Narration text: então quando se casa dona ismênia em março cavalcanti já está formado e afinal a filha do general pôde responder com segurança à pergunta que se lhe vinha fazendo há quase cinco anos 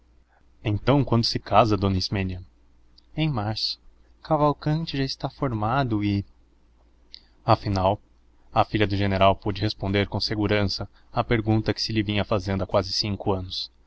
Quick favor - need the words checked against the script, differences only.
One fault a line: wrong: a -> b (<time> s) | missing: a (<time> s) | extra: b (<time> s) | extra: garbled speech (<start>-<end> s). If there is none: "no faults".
no faults